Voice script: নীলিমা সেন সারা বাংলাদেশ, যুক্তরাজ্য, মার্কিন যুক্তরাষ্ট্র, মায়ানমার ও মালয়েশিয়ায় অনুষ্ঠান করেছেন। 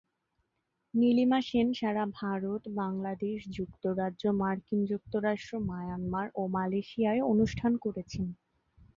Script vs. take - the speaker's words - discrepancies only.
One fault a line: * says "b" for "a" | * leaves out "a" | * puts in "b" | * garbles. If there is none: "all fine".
* puts in "ভারত"